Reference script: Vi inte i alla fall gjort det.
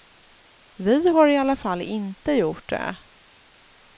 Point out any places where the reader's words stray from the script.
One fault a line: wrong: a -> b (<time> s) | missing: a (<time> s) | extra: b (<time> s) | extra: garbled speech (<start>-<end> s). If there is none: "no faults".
wrong: inte -> har (1.1 s)
extra: inte (1.8 s)